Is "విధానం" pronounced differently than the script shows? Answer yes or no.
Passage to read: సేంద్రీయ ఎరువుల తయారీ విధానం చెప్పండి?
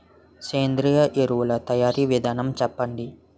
no